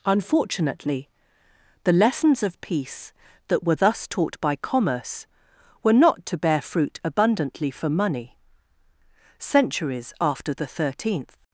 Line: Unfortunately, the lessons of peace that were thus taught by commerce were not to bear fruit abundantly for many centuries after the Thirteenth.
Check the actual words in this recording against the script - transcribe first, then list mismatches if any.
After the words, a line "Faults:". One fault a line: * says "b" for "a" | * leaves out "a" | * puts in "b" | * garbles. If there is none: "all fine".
Unfortunately, the lessons of peace that were thus taught by commerce were not to bear fruit abundantly for money centuries after the Thirteenth.
Faults:
* says "money" for "many"